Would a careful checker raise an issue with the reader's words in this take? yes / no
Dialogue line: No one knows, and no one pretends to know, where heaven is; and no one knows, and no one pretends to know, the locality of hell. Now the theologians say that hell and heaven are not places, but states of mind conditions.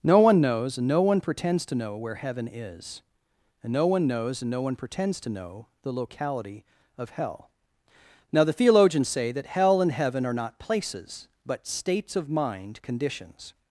no